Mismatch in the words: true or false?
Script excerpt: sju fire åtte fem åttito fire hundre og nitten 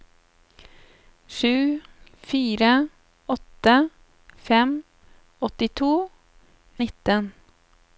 true